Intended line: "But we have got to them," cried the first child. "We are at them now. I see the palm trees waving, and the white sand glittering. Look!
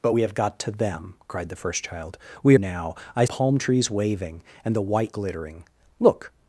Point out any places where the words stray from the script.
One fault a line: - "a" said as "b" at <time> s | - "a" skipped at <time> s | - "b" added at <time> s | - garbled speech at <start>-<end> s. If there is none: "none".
- "are at them" skipped at 2.6 s
- "see the" skipped at 3.2 s
- "sand" skipped at 5.2 s